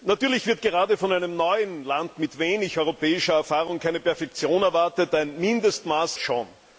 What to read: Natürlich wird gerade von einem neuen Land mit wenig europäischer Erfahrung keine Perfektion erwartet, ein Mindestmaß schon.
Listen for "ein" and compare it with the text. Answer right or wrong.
right